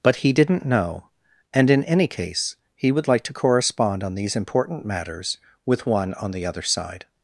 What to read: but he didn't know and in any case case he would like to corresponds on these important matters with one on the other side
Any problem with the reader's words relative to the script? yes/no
yes